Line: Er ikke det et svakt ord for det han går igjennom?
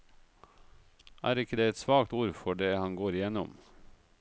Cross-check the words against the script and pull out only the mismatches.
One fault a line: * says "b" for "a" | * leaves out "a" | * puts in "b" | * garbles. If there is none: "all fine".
all fine